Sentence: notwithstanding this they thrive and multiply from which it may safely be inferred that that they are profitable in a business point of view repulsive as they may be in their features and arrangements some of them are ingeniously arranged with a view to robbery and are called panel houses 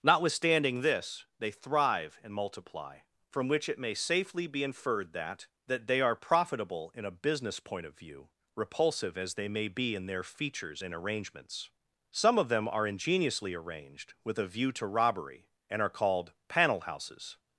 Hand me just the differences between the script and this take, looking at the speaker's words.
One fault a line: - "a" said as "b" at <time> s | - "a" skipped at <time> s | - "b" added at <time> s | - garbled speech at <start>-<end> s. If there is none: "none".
none